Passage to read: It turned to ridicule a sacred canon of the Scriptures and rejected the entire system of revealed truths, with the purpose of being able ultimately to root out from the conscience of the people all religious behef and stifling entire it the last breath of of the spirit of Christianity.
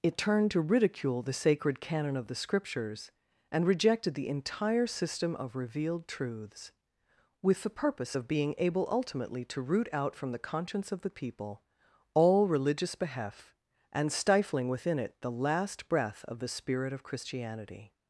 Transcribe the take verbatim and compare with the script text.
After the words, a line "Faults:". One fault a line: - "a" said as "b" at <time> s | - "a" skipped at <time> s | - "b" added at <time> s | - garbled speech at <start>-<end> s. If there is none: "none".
It turned to ridicule the sacred canon of the Scriptures and rejected the entire system of revealed truths, with the purpose of being able ultimately to root out from the conscience of the people all religious behef and stifling within it the last breath of the spirit of Christianity.
Faults:
- "a" said as "the" at 1.2 s
- "entire" said as "within" at 14.7 s
- "of" skipped at 16.4 s